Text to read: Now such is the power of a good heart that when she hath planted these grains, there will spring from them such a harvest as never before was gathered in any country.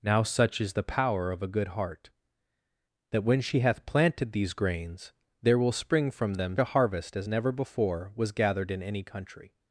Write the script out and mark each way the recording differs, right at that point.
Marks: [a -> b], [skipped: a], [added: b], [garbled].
Now such is the power of a good heart that when she hath planted these grains, there will spring from them [skipped: such] a harvest as never before was gathered in any country.